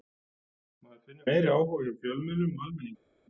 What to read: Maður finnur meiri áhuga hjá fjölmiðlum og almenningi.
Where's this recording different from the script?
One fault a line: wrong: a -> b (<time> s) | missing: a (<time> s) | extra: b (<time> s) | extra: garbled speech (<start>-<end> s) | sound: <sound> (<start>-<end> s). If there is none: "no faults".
no faults